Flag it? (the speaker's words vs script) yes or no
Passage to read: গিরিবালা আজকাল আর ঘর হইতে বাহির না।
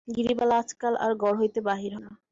no